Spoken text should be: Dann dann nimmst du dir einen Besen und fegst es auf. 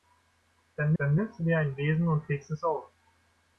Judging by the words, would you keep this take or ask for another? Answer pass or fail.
pass